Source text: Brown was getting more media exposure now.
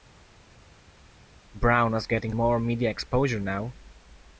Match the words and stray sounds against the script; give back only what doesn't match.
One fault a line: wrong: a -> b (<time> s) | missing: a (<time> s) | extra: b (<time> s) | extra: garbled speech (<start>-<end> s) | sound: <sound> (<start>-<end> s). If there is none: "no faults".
no faults